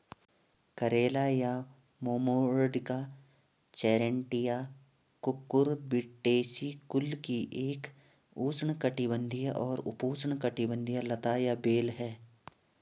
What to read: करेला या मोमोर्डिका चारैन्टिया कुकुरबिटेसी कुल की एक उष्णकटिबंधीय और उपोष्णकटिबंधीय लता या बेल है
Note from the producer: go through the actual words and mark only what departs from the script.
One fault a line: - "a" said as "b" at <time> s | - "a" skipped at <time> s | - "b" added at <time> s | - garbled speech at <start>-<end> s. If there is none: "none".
none